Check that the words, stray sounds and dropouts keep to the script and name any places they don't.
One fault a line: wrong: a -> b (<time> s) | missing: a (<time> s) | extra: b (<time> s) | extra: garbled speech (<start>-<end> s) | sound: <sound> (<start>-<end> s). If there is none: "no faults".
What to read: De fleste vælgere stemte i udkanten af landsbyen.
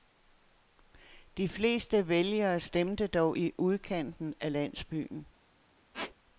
extra: dog (3.1 s)
sound: squeak (5.9-6.1 s)